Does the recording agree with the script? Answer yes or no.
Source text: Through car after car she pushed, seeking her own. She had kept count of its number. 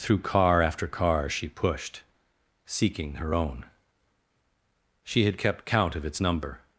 yes